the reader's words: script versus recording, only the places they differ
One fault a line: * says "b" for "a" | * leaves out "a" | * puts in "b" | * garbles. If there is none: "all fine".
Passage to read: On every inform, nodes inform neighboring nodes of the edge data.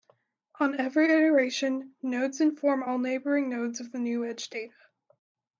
* says "iteration" for "inform"
* puts in "all"
* puts in "new"